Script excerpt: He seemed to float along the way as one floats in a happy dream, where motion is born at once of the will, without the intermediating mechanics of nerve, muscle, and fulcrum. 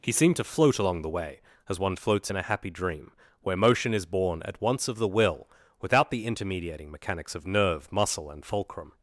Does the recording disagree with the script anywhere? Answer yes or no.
no